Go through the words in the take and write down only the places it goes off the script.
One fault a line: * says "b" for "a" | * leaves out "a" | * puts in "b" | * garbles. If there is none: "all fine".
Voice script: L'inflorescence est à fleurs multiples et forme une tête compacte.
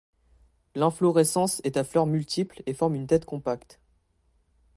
all fine